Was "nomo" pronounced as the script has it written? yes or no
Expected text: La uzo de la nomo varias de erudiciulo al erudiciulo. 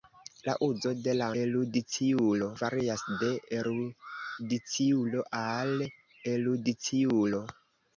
no